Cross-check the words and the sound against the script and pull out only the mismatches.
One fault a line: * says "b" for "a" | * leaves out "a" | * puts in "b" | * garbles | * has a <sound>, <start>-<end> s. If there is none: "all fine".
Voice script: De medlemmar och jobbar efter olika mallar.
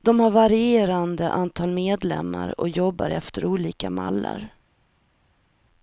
* puts in "har varierande antal"